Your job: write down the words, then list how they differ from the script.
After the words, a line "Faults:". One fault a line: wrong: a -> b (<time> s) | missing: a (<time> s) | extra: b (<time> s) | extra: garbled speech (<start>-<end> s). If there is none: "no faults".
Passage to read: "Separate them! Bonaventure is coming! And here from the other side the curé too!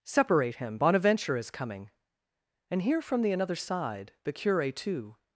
"Separate him! Bonaventure is coming! And here from the another side the curé too!
Faults:
wrong: them -> him (0.6 s)
wrong: other -> another (3.3 s)